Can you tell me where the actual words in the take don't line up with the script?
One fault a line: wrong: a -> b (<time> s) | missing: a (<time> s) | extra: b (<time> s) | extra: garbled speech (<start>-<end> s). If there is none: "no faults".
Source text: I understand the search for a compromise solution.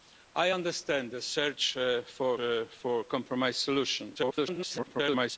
extra: for (2.3 s)
extra: garbled speech (4.2-5.4 s)